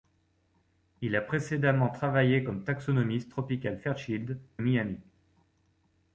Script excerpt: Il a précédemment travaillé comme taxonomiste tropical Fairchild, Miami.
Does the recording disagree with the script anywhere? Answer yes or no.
no